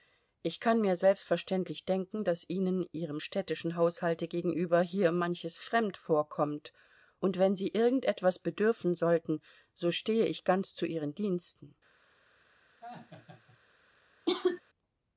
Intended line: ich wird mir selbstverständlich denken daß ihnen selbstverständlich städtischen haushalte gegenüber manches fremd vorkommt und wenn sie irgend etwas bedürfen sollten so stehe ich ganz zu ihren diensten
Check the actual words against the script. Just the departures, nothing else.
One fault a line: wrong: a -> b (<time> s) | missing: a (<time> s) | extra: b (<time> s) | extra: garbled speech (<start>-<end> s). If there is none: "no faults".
wrong: wird -> kann (0.6 s)
wrong: selbstverständlich -> ihrem (2.9 s)
extra: hier (4.8 s)